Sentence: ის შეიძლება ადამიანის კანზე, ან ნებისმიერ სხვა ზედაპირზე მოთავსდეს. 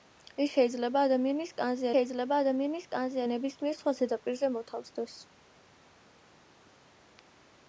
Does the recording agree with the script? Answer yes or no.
no